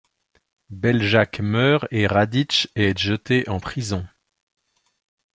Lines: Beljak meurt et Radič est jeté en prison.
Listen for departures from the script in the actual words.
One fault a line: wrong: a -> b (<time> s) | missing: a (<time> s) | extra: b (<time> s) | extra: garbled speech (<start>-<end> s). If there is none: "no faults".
no faults